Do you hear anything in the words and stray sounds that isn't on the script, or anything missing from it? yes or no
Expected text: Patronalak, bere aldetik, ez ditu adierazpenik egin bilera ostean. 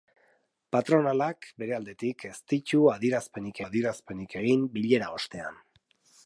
yes